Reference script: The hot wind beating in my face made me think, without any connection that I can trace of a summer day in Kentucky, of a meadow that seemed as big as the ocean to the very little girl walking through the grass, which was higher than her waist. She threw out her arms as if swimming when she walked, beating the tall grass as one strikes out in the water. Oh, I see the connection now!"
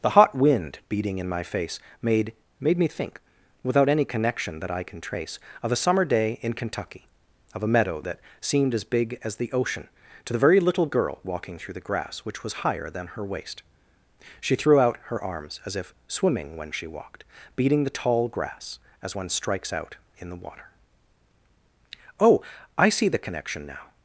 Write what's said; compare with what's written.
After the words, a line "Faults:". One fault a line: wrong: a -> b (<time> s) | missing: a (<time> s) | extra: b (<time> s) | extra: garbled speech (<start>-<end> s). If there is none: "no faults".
The hot wind beating in my face made made me think, without any connection that I can trace of a summer day in Kentucky, of a meadow that seemed as big as the ocean to the very little girl walking through the grass, which was higher than her waist. She threw out her arms as if swimming when she walked, beating the tall grass as one strikes out in the water. Oh, I see the connection now!"
Faults:
extra: made (2.6 s)